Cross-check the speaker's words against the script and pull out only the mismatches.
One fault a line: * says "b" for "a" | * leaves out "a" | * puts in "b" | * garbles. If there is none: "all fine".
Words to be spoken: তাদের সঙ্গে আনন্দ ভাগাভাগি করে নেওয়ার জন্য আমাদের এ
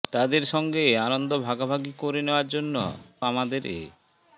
all fine